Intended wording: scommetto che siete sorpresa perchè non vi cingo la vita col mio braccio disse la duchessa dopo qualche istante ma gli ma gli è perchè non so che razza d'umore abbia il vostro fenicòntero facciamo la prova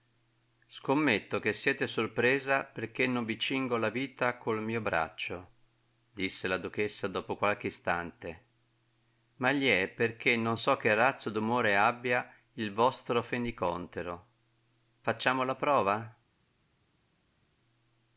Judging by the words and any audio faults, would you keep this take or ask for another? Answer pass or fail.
fail